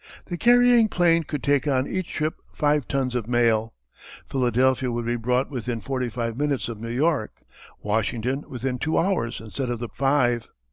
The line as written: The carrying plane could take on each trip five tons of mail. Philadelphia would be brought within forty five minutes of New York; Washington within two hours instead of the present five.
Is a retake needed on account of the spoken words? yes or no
yes